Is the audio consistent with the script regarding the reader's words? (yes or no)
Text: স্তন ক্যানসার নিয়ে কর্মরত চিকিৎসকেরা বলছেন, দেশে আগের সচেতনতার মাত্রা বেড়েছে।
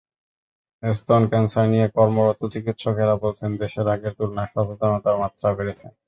no